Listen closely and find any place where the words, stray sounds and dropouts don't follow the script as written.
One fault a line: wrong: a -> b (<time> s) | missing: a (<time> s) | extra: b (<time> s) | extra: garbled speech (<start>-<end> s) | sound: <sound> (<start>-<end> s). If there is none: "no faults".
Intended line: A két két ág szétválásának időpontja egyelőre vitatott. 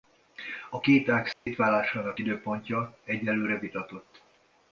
missing: két (1.1 s)
sound: dropout (1.3-1.5 s)